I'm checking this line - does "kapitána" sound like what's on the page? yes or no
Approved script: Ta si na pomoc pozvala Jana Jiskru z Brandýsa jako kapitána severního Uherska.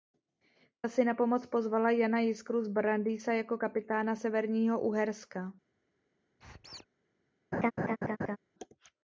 yes